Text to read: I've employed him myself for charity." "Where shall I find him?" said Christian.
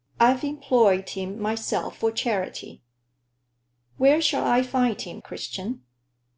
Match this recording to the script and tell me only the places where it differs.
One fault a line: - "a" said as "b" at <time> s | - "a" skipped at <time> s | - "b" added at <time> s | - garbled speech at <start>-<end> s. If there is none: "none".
- "said" skipped at 5.2 s